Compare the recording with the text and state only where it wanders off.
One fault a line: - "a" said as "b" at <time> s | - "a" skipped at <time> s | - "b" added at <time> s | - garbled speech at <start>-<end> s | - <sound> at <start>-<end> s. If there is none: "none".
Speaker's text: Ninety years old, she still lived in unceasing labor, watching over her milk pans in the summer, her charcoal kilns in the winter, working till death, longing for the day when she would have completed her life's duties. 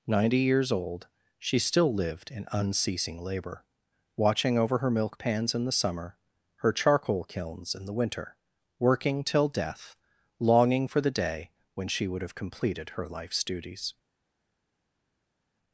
none